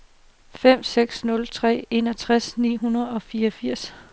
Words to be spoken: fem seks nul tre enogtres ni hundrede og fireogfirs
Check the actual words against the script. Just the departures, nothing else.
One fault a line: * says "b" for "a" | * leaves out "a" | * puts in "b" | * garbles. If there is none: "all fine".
all fine